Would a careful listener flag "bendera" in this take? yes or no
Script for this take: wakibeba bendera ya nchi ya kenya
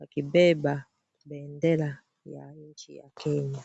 no